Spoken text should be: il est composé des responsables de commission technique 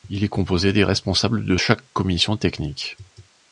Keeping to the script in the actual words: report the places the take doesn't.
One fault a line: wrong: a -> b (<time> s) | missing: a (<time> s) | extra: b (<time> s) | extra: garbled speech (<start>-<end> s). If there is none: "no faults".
extra: chaque (1.5 s)